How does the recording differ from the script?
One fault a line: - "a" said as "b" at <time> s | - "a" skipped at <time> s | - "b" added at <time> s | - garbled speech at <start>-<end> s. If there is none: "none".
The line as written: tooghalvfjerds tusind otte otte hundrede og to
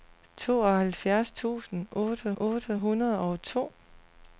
none